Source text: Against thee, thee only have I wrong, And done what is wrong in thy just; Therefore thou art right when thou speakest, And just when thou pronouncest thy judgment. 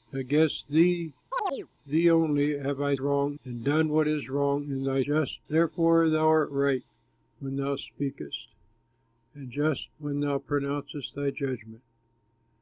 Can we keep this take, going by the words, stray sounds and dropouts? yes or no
no